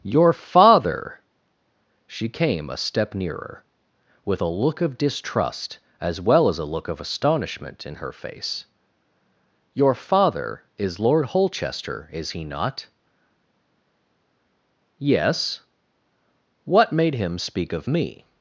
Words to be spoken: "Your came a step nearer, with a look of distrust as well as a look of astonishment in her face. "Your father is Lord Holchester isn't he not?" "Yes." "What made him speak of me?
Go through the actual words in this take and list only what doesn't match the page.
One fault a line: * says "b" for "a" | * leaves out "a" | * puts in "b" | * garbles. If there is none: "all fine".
* puts in "father She"
* says "is" for "isn't"